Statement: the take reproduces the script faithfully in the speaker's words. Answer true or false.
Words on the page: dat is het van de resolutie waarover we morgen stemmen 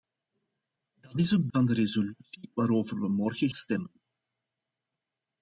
true